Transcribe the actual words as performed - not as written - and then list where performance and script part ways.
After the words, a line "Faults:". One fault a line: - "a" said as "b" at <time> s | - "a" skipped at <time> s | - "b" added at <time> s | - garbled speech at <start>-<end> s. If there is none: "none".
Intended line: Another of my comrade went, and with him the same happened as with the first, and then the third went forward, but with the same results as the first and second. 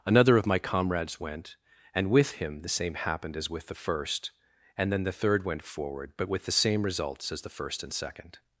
Another of my comrades went, and with him the same happened as with the first, and then the third went forward, but with the same results as the first and second.
Faults:
- "comrade" said as "comrades" at 0.6 s